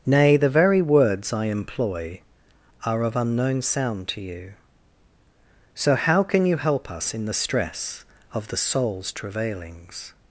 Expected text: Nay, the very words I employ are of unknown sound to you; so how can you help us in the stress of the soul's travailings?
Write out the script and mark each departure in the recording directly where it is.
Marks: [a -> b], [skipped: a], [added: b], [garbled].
Nay, the very words I employ are of unknown sound to you; so how can you help us in the stress of the soul's travailings?